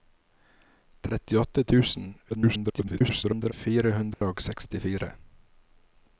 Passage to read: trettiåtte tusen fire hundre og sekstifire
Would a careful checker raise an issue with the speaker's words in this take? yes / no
yes